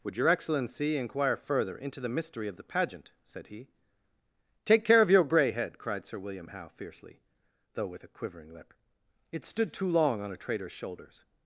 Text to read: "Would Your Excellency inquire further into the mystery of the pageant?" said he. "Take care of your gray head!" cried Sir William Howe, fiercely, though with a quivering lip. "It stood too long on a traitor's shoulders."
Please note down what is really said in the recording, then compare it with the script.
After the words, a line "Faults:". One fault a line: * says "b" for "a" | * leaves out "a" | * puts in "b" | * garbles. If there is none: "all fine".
"Would Your Excellency inquire further into the mystery of the pageant?" said he. "Take care of your gray head!" cried Sir William Howe, fiercely, though with a quivering lip. "It stood too long on a traitor's shoulders."
Faults:
all fine